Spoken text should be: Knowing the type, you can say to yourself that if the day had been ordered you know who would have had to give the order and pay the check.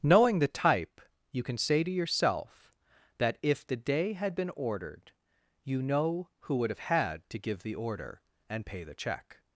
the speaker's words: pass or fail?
pass